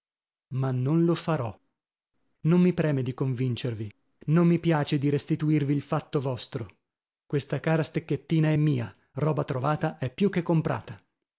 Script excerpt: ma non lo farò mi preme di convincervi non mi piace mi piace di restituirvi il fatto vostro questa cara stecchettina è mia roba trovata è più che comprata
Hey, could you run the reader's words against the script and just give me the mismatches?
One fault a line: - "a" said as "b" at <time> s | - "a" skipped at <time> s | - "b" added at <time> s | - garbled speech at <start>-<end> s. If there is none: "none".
- "non" added at 2.5 s
- "mi piace" skipped at 5.0 s